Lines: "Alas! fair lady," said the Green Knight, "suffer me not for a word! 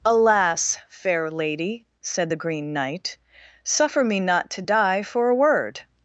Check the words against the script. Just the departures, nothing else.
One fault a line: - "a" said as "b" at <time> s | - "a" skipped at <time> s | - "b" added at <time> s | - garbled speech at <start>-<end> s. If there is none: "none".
- "to die" added at 4.5 s